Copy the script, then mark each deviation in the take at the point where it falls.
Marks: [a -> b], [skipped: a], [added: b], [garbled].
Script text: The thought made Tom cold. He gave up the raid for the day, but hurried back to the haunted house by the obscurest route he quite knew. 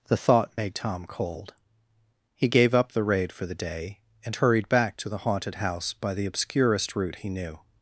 The thought made Tom cold. He gave up the raid for the day, [but -> and] hurried back to the haunted house by the obscurest route he [skipped: quite] knew.